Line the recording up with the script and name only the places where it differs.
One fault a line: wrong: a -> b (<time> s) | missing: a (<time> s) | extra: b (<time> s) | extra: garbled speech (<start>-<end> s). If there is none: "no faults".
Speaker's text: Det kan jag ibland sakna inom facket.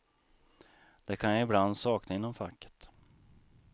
no faults